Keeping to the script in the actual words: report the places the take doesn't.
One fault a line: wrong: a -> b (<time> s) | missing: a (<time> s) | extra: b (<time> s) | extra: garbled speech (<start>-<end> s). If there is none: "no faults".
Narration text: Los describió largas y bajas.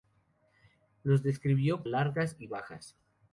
no faults